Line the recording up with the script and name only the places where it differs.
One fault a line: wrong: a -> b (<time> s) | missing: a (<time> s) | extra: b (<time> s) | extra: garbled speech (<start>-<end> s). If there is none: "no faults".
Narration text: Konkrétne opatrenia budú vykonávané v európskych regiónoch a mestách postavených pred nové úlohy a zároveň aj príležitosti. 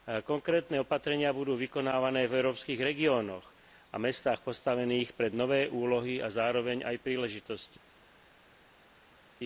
no faults